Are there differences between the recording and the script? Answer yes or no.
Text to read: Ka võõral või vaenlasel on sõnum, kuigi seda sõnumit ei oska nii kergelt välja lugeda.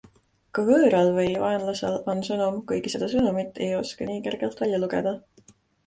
no